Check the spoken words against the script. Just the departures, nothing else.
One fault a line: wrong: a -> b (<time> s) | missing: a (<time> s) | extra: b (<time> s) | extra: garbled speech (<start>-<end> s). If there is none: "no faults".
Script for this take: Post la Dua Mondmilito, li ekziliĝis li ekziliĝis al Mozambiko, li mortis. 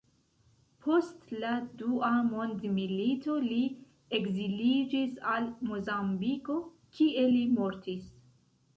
missing: li ekziliĝis (5.2 s)
extra: kie (7.0 s)